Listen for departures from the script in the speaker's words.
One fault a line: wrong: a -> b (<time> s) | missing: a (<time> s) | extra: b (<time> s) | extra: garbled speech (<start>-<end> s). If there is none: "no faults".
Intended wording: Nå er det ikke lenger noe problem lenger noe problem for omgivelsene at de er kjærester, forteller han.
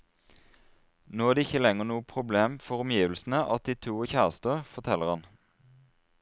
missing: lenger noe problem (2.5 s)
extra: to (3.9 s)